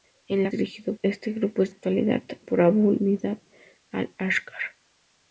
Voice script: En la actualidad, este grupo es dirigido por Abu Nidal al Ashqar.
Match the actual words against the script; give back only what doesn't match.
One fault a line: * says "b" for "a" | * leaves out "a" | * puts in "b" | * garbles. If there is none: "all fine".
* says "dirigido" for "actualidad"
* says "actualidad" for "dirigido"